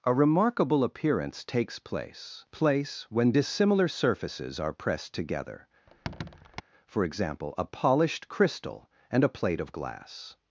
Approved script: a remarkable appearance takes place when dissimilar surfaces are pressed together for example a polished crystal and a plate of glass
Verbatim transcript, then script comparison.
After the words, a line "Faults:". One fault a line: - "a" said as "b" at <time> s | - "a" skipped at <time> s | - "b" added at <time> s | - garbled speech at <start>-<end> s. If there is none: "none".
a remarkable appearance takes place place when dissimilar surfaces are pressed together for example a polished crystal and a plate of glass
Faults:
- "place" added at 2.5 s